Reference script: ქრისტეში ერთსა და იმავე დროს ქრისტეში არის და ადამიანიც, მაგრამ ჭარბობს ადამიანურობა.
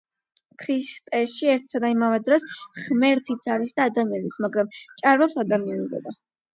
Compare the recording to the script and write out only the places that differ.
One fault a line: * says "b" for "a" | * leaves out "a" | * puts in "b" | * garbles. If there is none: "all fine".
* says "ღმერთიც" for "ქრისტეში"